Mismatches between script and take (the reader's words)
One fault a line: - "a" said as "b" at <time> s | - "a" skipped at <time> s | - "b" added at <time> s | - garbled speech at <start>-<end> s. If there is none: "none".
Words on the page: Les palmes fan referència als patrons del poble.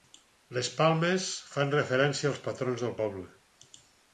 none